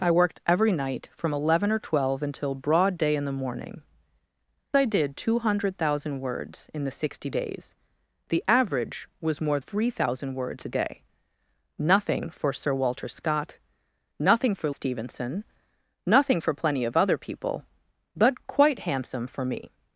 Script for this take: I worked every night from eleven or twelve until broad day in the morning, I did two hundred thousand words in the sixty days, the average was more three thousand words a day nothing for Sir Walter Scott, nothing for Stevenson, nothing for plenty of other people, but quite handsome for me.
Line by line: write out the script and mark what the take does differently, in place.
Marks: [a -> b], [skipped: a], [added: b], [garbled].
I worked every night from eleven or twelve until broad day in the morning, I did two hundred thousand words in the sixty days, the average was more three thousand words a day nothing for Sir Walter Scott, nothing for Stevenson, nothing for plenty of other people, but quite handsome for me.